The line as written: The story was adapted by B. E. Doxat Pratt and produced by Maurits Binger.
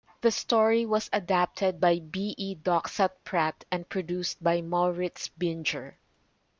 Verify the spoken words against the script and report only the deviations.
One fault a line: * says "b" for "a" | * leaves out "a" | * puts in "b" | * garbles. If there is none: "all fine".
all fine